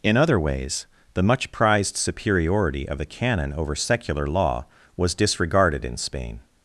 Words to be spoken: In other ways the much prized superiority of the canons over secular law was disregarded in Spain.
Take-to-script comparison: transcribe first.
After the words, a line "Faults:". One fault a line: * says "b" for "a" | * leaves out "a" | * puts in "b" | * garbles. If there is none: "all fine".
In other ways the much prized superiority of the canon over secular law was disregarded in Spain.
Faults:
* says "canon" for "canons"